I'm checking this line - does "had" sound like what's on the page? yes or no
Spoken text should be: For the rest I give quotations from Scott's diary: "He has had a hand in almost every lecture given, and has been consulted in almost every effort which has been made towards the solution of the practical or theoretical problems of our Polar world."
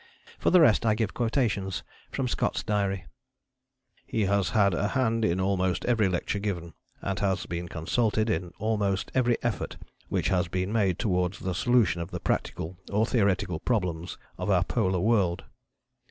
yes